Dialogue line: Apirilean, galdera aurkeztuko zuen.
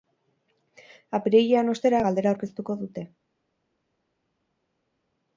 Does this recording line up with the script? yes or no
no